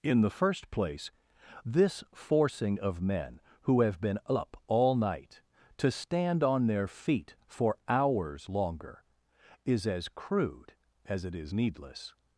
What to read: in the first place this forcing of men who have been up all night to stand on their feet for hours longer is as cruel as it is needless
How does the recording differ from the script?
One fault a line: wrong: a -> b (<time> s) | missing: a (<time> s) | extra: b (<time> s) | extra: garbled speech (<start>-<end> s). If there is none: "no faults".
wrong: cruel -> crude (10.1 s)